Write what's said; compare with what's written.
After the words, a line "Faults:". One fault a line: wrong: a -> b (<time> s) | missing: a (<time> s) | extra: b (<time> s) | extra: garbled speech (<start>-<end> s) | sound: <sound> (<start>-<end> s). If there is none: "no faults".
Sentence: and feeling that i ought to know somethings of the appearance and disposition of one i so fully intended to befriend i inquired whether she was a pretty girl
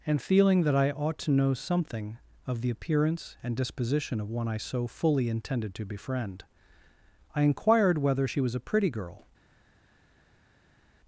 and feeling that i ought to know something of the appearance and disposition of one i so fully intended to befriend i inquired whether she was a pretty girl
Faults:
wrong: somethings -> something (1.5 s)